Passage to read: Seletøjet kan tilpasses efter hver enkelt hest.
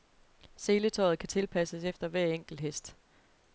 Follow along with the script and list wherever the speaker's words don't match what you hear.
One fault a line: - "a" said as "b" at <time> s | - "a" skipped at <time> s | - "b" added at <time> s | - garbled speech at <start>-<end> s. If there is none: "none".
none